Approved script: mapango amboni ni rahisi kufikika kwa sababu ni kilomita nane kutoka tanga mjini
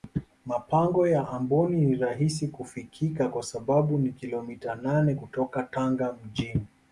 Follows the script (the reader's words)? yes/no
no